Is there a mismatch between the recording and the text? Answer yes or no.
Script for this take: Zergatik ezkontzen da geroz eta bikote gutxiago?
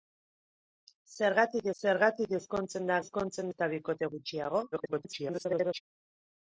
yes